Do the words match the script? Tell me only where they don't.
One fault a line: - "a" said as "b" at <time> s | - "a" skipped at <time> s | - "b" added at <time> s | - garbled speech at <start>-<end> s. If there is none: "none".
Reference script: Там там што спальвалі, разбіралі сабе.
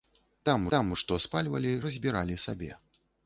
none